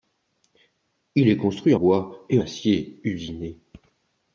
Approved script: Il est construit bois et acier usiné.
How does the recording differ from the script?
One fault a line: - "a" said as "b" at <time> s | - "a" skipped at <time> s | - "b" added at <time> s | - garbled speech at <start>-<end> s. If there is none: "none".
none